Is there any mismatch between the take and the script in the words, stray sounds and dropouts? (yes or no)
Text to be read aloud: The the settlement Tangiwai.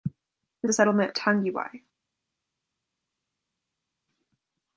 no